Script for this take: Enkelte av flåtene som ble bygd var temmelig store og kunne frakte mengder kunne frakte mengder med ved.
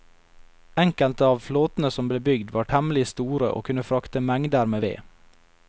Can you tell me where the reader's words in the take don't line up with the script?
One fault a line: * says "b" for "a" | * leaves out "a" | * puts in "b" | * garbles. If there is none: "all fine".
* leaves out "kunne frakte mengder"